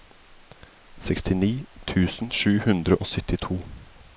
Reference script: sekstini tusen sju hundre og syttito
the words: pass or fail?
pass